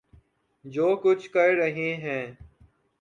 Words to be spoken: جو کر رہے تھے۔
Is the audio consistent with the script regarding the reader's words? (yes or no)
no